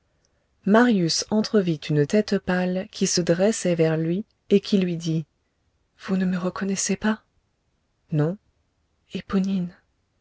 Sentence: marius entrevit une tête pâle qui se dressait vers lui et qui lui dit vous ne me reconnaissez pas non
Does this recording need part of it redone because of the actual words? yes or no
no